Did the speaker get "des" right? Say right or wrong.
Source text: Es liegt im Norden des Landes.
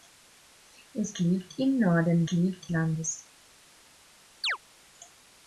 wrong